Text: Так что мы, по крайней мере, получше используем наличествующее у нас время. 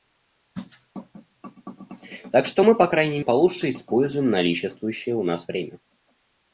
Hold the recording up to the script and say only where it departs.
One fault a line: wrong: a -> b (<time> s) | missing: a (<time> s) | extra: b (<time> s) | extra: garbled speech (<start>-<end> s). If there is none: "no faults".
missing: мере (3.2 s)